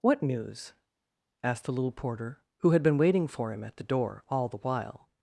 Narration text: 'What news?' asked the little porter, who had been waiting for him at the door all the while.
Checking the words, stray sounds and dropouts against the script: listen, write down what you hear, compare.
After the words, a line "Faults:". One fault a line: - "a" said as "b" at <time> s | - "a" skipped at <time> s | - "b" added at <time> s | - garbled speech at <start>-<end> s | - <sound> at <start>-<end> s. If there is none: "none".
'What news?' asked the little porter, who had been waiting for him at the door all the while.
Faults:
none